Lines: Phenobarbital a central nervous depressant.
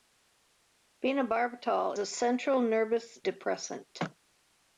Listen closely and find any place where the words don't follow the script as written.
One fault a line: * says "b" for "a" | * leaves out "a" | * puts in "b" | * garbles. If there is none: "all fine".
all fine